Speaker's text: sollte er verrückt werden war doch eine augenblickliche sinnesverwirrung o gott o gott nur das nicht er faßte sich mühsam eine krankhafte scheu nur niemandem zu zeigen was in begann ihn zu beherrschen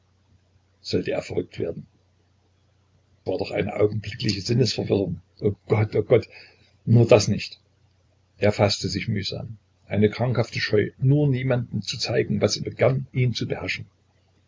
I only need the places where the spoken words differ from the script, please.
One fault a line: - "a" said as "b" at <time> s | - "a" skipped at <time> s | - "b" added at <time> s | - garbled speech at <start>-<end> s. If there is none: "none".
none